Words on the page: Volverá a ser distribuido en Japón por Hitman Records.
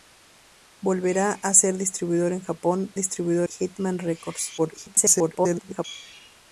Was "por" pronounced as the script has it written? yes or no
no